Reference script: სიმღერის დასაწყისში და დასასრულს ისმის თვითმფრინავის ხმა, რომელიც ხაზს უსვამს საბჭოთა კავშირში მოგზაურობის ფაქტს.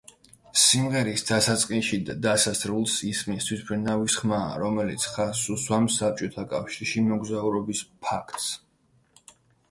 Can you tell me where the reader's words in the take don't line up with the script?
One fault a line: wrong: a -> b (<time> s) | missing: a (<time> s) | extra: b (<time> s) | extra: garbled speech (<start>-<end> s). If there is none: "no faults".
no faults